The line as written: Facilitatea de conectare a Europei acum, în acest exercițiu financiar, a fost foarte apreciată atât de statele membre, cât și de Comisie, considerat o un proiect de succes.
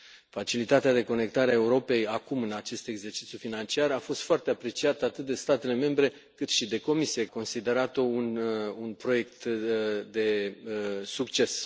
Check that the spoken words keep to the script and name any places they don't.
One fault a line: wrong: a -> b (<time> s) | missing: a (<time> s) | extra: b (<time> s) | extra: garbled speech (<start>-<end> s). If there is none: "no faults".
no faults